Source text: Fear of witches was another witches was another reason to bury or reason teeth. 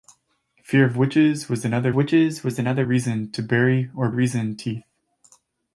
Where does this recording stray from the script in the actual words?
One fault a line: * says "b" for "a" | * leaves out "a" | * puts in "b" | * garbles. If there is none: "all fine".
all fine